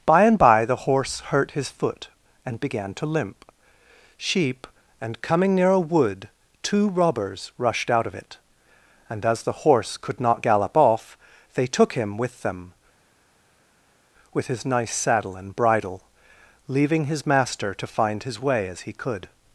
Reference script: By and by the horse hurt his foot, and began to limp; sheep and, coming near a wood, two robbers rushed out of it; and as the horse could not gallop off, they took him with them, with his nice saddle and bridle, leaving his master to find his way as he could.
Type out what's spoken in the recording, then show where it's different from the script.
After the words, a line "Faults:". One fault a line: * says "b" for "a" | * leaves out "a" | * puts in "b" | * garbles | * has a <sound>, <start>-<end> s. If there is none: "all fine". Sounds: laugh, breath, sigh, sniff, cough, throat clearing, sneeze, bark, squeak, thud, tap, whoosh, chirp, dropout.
By and by the horse hurt his foot, and began to limp; sheep and, coming near a wood, two robbers rushed out of it; and as the horse could not gallop off, they took him with them, with his nice saddle and bridle, leaving his master to find his way as he could.
Faults:
all fine